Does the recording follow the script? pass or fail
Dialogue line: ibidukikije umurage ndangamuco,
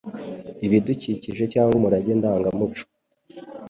fail